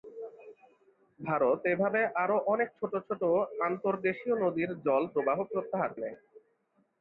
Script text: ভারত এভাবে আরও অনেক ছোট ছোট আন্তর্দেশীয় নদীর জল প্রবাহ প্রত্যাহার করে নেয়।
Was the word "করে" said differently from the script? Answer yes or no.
yes